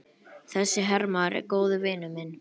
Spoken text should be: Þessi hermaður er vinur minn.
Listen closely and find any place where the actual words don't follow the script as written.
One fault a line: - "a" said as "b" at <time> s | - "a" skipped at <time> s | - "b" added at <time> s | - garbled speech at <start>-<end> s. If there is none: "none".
- "góður" added at 1.6 s